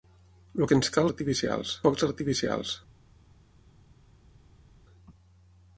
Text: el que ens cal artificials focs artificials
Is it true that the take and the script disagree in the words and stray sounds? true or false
false